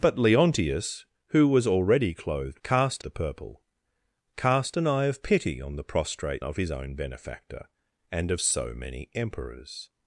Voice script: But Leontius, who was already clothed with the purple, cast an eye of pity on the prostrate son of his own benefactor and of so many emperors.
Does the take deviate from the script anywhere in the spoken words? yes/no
yes